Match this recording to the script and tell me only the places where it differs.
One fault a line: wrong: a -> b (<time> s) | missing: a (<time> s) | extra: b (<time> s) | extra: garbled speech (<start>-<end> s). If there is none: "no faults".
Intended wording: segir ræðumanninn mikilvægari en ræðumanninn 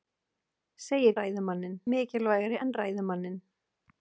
no faults